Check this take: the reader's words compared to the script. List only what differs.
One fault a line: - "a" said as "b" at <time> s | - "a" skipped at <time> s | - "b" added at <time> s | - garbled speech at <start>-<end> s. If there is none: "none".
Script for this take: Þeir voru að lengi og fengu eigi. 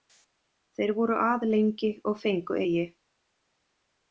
none